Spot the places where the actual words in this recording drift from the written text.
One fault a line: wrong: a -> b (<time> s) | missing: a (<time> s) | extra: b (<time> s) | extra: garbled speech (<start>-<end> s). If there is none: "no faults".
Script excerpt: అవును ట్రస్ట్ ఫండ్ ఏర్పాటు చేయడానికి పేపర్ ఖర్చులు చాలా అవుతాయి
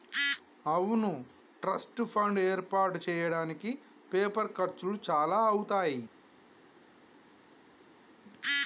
no faults